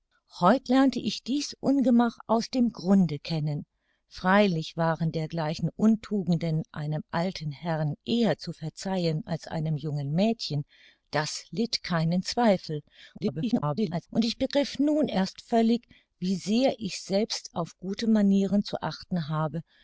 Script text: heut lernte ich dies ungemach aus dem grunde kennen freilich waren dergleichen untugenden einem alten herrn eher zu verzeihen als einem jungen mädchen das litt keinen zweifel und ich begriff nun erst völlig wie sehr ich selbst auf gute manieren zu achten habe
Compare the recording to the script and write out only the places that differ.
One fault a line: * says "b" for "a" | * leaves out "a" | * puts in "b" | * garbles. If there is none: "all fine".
* garbles